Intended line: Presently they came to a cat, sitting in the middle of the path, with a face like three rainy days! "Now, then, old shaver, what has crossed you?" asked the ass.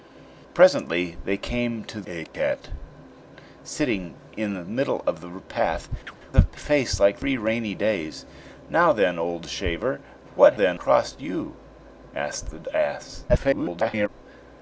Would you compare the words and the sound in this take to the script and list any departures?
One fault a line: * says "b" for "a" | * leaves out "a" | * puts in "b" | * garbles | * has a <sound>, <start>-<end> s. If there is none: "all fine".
* leaves out "with"
* has a chirp, 6.1-6.2 s
* says "then" for "has"
* garbles